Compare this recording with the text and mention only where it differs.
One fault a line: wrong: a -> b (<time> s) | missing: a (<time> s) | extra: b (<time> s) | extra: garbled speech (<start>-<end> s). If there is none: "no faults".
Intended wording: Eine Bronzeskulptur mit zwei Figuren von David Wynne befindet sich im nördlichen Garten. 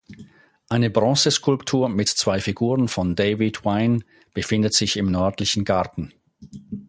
no faults